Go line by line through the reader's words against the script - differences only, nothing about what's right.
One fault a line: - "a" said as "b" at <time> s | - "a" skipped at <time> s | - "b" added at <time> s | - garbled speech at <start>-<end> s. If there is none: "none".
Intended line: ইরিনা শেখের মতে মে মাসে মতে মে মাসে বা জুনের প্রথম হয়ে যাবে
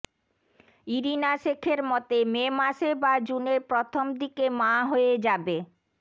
- "মতে মে মাসে" skipped at 2.9 s
- "দিকে মা" added at 4.2 s